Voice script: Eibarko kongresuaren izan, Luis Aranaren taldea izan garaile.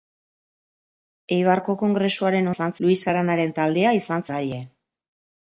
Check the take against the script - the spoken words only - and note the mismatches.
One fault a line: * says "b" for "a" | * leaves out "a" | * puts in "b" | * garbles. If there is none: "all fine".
all fine